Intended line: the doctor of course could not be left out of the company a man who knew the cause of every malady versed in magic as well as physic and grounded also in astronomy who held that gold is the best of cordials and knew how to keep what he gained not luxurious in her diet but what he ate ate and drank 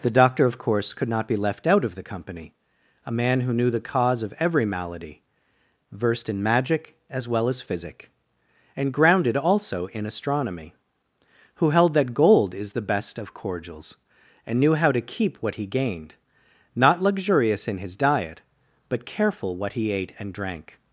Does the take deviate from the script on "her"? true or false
true